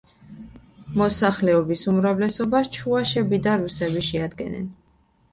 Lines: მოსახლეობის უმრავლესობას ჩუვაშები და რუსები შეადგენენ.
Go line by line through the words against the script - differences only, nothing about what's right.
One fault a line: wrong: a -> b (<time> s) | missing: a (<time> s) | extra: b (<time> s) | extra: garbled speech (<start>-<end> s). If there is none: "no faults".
no faults